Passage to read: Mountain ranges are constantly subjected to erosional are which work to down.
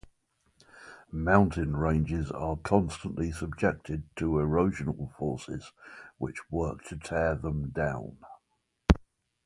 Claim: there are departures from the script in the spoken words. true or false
true